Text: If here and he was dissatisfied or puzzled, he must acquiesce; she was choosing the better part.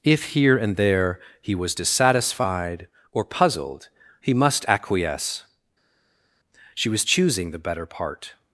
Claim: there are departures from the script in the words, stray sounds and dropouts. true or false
true